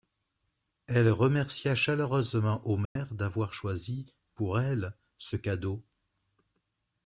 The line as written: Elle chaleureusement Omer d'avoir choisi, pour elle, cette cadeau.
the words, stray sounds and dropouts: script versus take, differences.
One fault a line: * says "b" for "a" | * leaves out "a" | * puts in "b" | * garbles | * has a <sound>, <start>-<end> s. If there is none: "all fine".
* puts in "remercia"
* has a dropout, 2.9-3.0 s
* says "ce" for "cette"